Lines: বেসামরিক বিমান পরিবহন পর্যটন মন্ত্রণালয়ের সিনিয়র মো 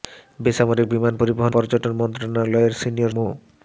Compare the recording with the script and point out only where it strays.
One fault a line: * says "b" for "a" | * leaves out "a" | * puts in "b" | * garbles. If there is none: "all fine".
all fine